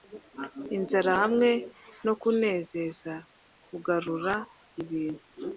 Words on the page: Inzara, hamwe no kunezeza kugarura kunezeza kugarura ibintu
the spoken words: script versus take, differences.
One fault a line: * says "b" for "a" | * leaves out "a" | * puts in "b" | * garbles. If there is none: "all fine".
* leaves out "kunezeza kugarura"